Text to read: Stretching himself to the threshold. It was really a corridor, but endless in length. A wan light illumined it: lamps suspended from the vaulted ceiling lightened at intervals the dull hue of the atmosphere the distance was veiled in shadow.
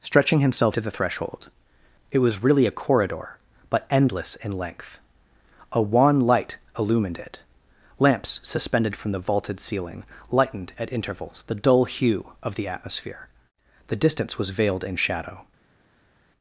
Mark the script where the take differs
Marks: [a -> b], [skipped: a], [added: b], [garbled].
Stretching himself to the threshold. It was really a corridor, but endless in length. A wan light illumined it: lamps suspended from the vaulted ceiling lightened at intervals the dull hue of the atmosphere the distance was veiled in shadow.